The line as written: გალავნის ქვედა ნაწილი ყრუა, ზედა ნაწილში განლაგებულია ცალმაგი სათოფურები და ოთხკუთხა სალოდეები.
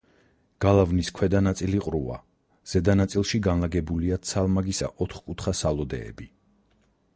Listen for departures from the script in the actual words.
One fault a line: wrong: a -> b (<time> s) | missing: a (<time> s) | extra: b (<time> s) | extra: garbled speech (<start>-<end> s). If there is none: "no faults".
missing: სათოფურები (4.8 s)